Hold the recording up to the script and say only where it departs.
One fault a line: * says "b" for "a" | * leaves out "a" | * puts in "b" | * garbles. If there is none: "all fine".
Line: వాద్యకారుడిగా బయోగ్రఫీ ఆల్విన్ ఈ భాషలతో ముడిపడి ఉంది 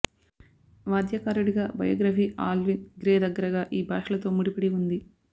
* puts in "గ్రే దగ్గరగా"